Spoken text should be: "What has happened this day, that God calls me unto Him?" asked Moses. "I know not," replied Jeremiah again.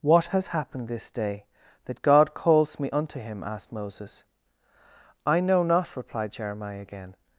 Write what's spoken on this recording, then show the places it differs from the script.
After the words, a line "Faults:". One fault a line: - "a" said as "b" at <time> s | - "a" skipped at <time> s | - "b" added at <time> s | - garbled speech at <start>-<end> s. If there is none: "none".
"What has happened this day, that God calls me unto Him?" asked Moses. "I know not," replied Jeremiah again.
Faults:
none